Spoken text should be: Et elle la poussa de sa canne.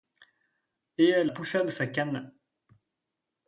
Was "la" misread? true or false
true